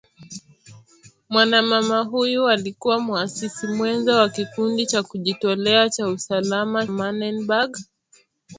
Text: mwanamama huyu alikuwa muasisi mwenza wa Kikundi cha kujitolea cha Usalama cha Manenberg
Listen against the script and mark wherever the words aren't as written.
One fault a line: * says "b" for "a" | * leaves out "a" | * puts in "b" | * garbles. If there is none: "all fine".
* leaves out "cha"